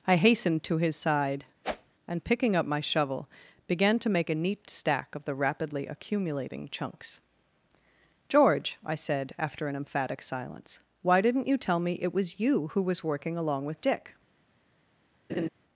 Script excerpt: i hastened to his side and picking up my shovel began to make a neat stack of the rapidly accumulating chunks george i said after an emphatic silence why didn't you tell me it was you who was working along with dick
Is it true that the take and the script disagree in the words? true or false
false